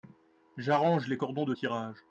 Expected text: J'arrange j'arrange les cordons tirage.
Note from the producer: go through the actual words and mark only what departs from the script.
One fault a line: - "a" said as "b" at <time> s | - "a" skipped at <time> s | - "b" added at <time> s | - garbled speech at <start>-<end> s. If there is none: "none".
- "j'arrange" skipped at 1.1 s
- "de" added at 1.4 s